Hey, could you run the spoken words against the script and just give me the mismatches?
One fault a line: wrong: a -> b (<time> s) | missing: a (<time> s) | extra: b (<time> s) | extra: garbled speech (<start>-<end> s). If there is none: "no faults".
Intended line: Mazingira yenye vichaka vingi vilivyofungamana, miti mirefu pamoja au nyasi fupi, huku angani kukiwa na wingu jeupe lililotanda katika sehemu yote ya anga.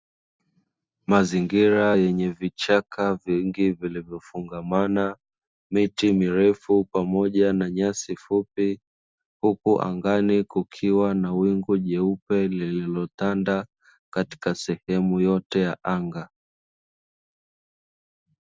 wrong: au -> na (7.5 s)